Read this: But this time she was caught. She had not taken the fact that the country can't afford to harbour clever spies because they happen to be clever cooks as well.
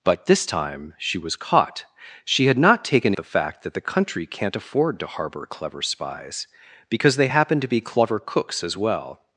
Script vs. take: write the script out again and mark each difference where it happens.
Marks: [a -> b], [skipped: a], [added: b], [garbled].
But this time she was caught. She had not taken the fact that the country can't afford to harbour clever spies because they happen to be clever cooks as well.